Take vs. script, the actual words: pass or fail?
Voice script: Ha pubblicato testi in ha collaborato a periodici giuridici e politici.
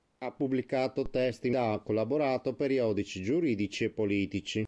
pass